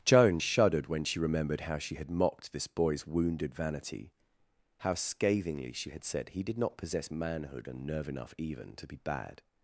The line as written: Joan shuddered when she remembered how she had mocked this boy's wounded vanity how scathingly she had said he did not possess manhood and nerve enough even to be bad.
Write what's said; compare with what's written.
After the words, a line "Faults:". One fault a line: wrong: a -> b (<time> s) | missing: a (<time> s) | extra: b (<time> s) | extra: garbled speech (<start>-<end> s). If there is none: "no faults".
Joan shuddered when she remembered how she had mocked this boy's wounded vanity how scathingly she had said he did not possess manhood and nerve enough even to be bad.
Faults:
no faults